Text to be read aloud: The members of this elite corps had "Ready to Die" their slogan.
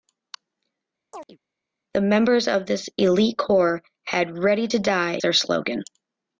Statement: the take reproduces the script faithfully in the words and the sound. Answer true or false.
false